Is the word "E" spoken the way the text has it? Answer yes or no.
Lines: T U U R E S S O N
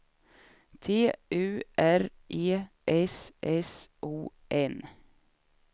yes